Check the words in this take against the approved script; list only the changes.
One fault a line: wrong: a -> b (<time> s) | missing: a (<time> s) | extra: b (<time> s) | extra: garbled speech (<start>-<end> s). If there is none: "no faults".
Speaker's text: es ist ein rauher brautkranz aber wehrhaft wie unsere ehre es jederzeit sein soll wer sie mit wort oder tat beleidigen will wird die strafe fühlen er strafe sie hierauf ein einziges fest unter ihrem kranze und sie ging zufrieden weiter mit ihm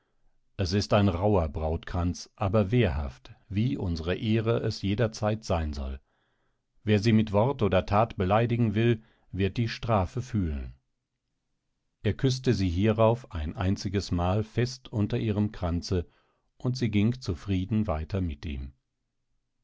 wrong: strafe -> küßte (12.2 s)
extra: mal (14.1 s)